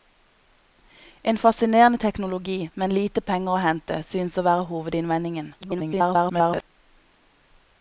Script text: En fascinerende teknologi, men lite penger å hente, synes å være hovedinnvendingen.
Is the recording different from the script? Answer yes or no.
yes